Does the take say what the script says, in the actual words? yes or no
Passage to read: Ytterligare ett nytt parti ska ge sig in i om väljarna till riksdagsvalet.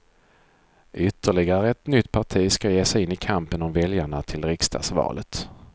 no